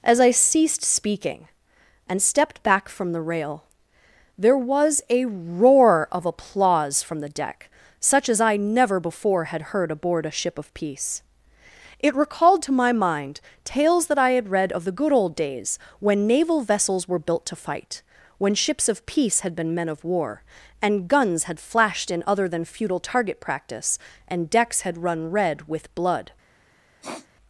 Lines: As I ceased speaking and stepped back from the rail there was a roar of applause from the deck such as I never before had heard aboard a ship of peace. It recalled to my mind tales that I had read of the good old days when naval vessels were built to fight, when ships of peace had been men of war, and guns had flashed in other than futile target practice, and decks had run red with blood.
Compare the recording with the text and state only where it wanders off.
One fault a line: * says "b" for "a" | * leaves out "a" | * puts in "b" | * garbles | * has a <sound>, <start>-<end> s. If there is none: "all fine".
* has a sniff, 27.0-27.3 s